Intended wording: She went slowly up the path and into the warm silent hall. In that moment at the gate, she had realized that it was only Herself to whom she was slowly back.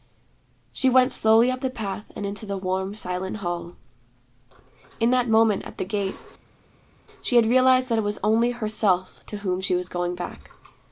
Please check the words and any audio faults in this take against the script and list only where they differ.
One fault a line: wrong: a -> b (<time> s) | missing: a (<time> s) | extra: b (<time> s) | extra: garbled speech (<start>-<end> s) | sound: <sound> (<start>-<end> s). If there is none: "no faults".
wrong: slowly -> going (9.9 s)